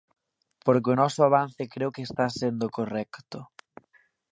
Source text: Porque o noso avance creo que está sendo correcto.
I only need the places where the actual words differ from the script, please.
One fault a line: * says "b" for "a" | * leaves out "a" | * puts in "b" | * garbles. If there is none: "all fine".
all fine